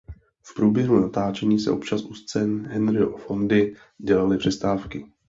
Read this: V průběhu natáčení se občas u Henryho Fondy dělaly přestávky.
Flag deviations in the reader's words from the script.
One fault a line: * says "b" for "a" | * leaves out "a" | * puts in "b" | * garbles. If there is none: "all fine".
* puts in "scén"